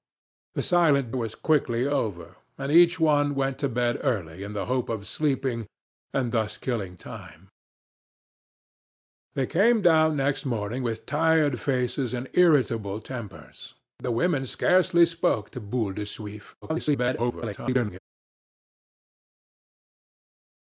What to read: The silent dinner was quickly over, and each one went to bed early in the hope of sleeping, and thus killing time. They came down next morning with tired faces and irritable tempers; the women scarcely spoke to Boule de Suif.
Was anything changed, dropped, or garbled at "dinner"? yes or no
yes